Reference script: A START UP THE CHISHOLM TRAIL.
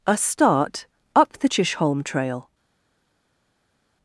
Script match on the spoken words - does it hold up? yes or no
yes